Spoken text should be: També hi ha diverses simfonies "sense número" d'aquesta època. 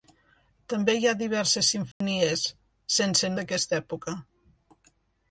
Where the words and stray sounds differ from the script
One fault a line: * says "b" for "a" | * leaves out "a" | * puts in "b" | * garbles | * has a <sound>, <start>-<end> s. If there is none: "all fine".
* has a dropout, 1.9-2.0 s
* leaves out "número"